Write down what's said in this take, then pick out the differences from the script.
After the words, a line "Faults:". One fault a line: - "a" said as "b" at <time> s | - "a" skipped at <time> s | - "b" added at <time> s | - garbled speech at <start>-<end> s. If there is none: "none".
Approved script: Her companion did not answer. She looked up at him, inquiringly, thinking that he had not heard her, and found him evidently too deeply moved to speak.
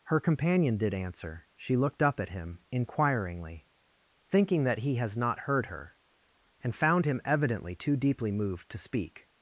Her companion did answer. She looked up at him, inquiringly, thinking that he has not heard her, and found him evidently too deeply moved to speak.
Faults:
- "not" skipped at 0.9 s
- "had" said as "has" at 5.0 s